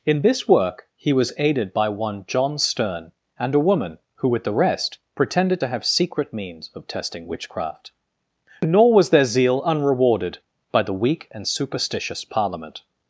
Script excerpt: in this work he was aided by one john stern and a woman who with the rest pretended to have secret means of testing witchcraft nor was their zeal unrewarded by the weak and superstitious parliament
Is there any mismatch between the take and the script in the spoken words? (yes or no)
no